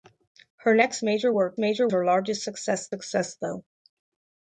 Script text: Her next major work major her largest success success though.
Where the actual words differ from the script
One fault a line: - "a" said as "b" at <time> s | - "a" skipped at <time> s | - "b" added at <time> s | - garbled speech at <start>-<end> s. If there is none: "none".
none